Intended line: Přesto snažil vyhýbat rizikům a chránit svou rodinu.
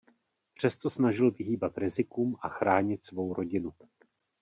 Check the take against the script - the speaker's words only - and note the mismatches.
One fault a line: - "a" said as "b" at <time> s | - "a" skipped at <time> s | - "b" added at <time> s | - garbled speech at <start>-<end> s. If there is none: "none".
none